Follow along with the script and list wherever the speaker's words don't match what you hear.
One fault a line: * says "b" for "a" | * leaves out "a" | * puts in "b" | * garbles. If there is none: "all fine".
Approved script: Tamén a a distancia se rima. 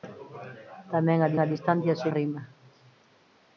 all fine